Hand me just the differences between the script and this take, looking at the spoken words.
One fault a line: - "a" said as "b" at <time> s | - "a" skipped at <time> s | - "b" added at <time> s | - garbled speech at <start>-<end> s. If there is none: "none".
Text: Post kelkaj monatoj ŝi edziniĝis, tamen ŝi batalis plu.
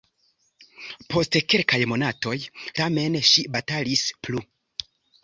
- "ŝi edziniĝis" skipped at 2.4 s